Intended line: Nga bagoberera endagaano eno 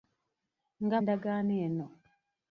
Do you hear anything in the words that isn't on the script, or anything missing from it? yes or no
yes